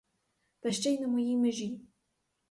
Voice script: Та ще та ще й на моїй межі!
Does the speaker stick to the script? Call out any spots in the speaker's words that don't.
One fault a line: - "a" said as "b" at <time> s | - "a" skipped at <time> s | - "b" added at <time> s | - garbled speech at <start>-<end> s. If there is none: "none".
- "та ще" skipped at 0.9 s